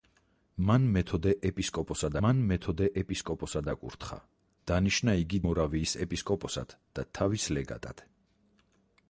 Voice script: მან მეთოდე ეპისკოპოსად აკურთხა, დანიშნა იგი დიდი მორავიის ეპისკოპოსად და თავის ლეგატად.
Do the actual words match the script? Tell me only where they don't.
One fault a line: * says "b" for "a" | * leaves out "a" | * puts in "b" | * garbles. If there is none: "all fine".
* puts in "მან მეთოდე ეპისკოპოსად"
* leaves out "დიდი"